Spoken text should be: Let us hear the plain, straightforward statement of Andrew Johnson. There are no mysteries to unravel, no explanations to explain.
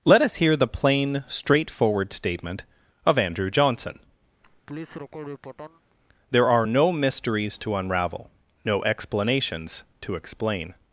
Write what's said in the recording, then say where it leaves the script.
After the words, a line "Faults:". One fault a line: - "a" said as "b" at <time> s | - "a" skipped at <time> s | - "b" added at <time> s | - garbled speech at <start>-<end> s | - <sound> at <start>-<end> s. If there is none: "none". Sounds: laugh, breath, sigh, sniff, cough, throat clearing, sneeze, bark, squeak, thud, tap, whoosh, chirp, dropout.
Let us hear the plain, straightforward statement of Andrew Johnson. There are no mysteries to unravel, no explanations to explain.
Faults:
- laugh at 4.4-5.8 s